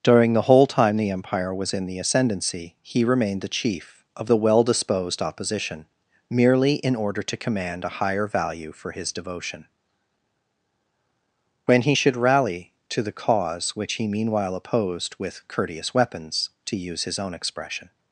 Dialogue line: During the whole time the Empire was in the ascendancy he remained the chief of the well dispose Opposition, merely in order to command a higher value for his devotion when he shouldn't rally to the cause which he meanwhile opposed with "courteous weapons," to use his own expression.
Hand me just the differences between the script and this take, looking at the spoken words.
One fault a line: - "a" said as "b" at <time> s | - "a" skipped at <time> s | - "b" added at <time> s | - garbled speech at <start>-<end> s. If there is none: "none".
- "dispose" said as "disposed" at 4.6 s
- "shouldn't" said as "should" at 11.9 s